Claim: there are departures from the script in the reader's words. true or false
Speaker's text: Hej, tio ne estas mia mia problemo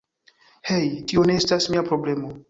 true